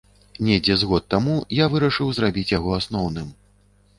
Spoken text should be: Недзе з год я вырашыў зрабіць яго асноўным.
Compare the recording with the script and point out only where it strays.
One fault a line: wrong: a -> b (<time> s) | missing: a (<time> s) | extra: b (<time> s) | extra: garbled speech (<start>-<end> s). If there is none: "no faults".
extra: таму (1.1 s)